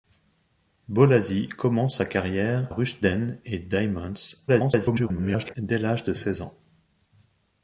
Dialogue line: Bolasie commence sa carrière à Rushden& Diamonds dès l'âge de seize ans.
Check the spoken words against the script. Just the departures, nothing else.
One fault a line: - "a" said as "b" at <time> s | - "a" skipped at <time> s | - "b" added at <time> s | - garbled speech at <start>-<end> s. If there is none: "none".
- "à" skipped at 2.6 s
- garbled speech at 4.5-5.5 s